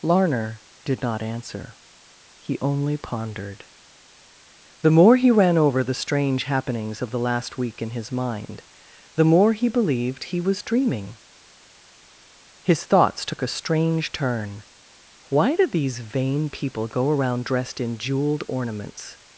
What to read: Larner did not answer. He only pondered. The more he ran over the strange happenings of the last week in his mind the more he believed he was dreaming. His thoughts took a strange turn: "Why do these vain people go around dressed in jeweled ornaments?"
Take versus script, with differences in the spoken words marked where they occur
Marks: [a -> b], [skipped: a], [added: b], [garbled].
Larner did not answer. He only pondered. The more he ran over the strange happenings of the last week in his mind the more he believed he was dreaming. His thoughts took a strange turn: "Why do these vain people go around dressed in jeweled ornaments?"